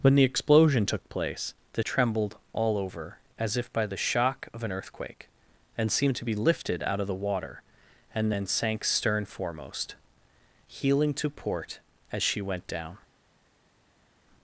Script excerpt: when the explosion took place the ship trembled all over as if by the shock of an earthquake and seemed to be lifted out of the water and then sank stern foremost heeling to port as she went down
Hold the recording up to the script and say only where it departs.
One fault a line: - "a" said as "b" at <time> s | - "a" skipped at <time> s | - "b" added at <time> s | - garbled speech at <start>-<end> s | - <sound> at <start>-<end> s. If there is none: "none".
- "ship" skipped at 1.8 s